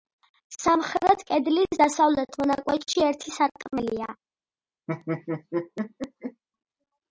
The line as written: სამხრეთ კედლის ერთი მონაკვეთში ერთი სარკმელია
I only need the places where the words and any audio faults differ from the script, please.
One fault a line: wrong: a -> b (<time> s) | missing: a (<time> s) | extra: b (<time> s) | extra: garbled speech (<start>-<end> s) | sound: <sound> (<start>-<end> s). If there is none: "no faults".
wrong: ერთი -> დასავლეთ (1.8 s)
sound: laugh (4.9-6.4 s)